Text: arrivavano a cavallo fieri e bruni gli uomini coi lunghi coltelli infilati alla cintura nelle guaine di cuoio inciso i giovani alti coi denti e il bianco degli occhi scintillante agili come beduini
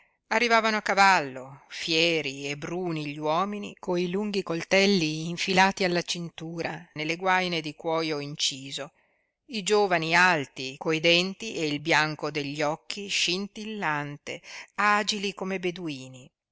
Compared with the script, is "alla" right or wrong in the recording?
right